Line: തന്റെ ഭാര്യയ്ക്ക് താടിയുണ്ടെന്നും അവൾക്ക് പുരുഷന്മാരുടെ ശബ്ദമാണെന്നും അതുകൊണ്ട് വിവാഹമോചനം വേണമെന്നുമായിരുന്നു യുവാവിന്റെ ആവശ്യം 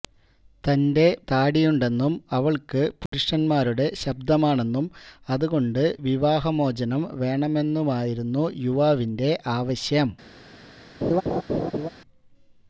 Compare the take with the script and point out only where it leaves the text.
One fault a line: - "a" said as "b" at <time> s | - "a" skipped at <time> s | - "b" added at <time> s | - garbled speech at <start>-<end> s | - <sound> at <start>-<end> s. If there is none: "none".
- "ഭാര്യയ്ക്ക്" skipped at 1.0 s
- dropout at 3.1-3.1 s
- laugh at 11.0-11.9 s